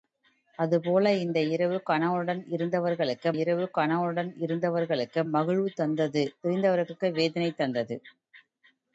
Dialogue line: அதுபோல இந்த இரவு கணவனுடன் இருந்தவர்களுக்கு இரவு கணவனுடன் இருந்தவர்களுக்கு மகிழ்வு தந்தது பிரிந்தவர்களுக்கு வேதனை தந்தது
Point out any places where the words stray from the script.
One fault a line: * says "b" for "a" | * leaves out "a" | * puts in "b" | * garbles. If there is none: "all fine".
all fine